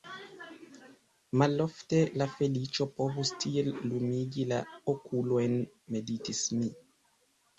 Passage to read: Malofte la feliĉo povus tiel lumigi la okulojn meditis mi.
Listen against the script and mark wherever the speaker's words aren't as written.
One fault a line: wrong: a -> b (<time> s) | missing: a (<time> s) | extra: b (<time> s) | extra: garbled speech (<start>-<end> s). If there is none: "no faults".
no faults